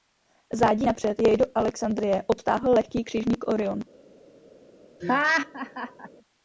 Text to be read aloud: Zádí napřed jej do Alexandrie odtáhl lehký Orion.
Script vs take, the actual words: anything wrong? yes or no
yes